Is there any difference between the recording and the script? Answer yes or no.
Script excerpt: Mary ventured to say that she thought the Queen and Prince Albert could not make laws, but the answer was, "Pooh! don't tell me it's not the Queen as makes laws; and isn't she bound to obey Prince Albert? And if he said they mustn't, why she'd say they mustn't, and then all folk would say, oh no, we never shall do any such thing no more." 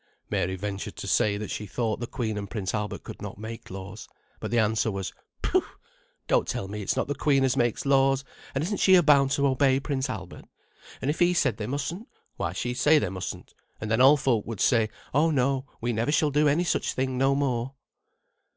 no